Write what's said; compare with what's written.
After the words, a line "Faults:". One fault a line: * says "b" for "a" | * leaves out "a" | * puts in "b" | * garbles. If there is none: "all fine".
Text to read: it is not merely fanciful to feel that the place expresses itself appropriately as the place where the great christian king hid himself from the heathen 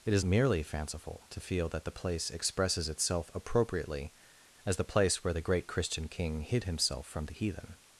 it is merely fanciful to feel that the place expresses itself appropriately as the place where the great christian king hid himself from the heathen
Faults:
* leaves out "not"